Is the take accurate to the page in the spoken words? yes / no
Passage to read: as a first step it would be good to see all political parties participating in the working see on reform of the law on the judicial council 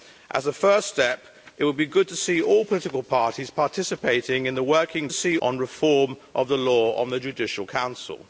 yes